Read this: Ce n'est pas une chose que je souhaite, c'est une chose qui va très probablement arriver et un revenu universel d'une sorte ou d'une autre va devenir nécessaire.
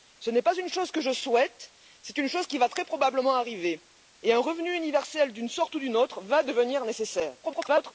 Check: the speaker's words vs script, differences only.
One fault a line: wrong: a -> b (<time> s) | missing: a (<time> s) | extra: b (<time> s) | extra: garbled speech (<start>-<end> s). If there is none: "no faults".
extra: garbled speech (7.4-7.9 s)